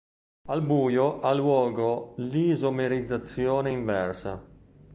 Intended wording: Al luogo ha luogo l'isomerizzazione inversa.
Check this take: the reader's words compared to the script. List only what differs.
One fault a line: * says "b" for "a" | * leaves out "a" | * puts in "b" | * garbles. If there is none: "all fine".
* says "buio" for "luogo"